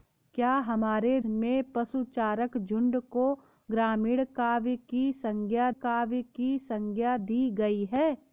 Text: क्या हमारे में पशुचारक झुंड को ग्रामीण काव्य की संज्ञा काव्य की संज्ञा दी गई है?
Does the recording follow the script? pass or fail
pass